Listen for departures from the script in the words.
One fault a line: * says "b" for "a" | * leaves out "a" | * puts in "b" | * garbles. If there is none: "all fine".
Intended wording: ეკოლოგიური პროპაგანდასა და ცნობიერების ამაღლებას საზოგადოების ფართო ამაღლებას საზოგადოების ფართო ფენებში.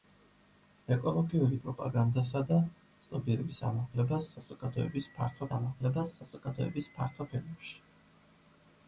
all fine